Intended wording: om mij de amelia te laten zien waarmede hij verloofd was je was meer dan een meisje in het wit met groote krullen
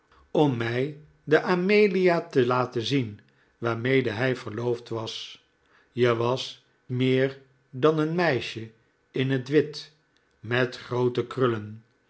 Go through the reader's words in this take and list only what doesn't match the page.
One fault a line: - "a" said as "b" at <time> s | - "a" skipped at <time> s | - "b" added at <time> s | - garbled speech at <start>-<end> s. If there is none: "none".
none